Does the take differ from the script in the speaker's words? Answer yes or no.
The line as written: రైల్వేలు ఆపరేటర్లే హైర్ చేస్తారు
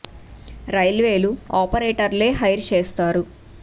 no